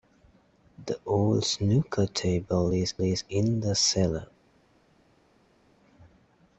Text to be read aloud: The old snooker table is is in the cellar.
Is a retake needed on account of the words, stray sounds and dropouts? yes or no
no